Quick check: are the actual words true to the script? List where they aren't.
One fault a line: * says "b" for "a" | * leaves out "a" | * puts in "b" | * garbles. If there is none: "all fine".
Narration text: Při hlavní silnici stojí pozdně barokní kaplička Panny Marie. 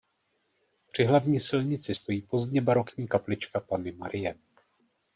all fine